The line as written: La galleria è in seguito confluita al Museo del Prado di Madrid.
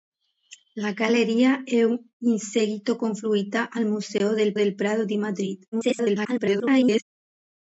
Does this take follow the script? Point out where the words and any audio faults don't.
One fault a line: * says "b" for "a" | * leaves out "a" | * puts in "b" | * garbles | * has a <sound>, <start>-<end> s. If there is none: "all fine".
* puts in "del"
* garbles